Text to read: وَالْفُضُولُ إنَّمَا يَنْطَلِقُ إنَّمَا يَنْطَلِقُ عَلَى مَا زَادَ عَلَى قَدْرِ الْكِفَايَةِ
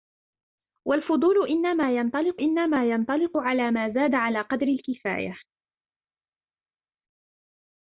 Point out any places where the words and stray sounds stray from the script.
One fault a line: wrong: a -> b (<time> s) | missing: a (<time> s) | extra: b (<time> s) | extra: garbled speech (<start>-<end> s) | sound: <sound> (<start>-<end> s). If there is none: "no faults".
no faults